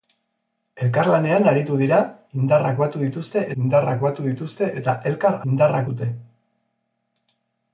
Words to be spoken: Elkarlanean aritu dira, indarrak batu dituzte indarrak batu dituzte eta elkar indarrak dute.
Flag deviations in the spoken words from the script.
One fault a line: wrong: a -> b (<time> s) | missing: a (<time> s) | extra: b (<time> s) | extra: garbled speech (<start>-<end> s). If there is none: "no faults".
no faults